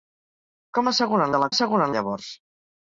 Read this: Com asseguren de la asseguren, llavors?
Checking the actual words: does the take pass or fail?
pass